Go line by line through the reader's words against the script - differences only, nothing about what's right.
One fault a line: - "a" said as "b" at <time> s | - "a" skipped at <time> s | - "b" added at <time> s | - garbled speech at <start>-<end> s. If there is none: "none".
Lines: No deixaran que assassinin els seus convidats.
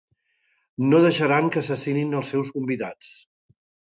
none